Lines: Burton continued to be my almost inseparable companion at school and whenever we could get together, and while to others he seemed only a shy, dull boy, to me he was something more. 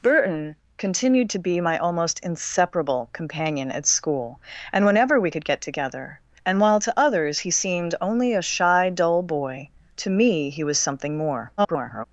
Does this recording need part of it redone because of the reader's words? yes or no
yes